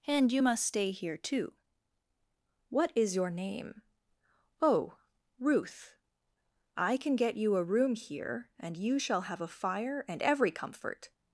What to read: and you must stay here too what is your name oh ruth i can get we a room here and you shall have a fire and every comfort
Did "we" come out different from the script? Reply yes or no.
yes